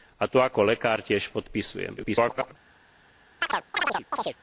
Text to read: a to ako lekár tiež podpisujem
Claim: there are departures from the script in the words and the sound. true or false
true